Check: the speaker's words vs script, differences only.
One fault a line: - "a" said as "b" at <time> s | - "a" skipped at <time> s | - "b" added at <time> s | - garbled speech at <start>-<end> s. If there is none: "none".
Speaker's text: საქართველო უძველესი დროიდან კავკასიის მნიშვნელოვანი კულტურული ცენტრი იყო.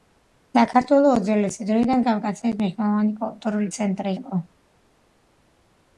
none